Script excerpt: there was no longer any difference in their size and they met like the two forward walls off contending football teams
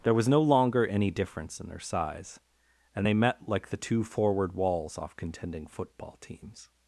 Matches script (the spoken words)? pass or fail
pass